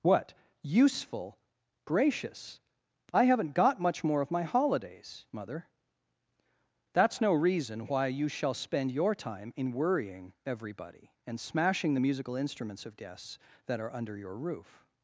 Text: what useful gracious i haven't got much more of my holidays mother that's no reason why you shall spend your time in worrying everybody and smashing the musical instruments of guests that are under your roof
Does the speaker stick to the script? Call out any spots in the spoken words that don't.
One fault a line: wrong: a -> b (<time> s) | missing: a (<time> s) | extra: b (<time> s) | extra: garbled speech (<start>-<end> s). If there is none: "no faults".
no faults